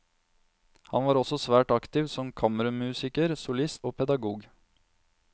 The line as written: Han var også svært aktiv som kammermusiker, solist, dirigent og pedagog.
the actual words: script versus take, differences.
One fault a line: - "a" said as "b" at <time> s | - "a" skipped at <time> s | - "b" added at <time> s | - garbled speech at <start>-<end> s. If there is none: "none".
- "dirigent" skipped at 3.8 s